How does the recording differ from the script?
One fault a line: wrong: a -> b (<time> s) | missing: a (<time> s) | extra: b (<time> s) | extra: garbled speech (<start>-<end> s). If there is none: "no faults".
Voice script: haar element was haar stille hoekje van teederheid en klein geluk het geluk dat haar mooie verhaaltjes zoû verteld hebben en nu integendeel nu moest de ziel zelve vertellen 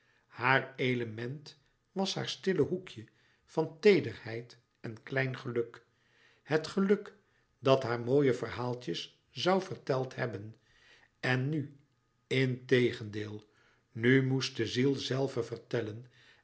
no faults